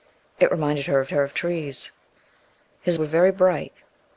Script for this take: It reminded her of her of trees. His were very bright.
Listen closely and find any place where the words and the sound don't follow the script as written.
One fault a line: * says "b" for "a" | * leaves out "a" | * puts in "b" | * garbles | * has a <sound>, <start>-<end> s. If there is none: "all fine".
all fine